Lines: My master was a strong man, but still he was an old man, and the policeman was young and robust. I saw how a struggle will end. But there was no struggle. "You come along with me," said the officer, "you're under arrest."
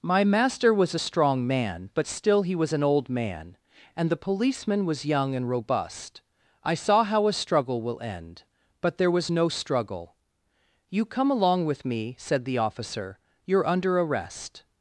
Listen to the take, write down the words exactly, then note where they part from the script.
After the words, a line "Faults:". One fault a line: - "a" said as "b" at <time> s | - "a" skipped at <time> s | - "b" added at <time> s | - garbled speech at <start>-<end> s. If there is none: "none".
My master was a strong man, but still he was an old man, and the policeman was young and robust. I saw how a struggle will end. But there was no struggle. "You come along with me," said the officer, "you're under arrest."
Faults:
none